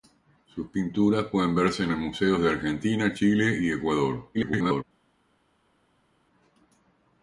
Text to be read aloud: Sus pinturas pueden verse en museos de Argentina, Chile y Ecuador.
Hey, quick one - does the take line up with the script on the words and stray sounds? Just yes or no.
no